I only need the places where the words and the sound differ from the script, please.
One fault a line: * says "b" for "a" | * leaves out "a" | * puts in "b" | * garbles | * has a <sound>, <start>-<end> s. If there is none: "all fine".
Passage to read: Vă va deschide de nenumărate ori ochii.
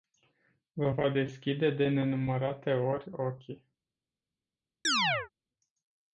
* has a chirp, 4.8-5.3 s